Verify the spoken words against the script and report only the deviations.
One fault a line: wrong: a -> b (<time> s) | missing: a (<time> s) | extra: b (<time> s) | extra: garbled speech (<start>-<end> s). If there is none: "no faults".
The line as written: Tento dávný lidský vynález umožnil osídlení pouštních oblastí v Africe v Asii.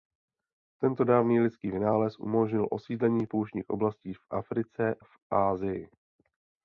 no faults